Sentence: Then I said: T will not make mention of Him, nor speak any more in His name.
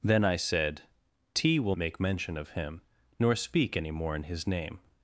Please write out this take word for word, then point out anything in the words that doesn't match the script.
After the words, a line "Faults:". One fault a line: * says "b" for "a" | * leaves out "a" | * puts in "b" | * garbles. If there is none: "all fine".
Then I said: T will make mention of Him, nor speak any more in His name.
Faults:
* leaves out "not"